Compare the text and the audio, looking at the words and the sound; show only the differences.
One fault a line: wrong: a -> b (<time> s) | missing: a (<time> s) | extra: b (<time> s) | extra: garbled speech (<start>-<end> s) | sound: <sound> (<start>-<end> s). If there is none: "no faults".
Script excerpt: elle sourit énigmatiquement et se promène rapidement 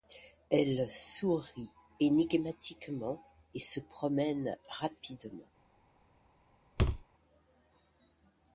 sound: thud (6.8-7.0 s)